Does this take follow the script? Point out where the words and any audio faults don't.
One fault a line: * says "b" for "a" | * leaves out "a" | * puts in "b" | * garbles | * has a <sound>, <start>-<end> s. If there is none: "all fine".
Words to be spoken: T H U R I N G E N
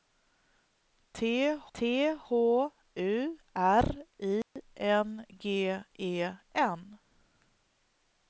* puts in "t H"
* has a dropout, 4.4-4.6 s